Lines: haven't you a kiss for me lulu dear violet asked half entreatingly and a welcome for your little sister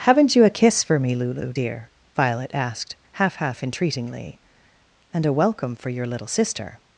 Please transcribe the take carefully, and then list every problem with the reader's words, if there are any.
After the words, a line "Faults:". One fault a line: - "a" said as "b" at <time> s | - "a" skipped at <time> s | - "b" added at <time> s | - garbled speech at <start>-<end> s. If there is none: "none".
haven't you a kiss for me lulu dear violet asked half half entreatingly and a welcome for your little sister
Faults:
- "half" added at 3.3 s